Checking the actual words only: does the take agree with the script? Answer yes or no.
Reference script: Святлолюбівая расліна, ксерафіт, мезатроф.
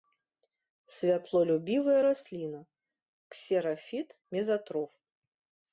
yes